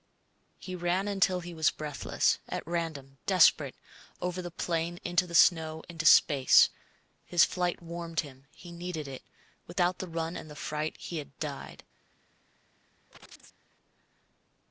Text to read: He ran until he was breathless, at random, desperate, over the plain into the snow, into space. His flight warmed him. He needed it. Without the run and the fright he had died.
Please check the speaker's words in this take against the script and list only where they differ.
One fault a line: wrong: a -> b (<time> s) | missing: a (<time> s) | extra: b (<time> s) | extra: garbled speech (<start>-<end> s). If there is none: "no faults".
no faults